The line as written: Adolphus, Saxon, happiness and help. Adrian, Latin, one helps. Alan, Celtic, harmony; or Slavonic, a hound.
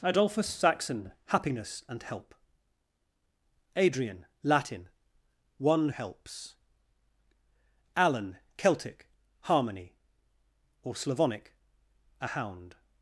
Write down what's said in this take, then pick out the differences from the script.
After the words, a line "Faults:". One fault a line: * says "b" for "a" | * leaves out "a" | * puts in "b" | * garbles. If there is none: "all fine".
Adolphus, Saxon, happiness and help. Adrian, Latin, one helps. Alan, Celtic, harmony; or Slavonic, a hound.
Faults:
all fine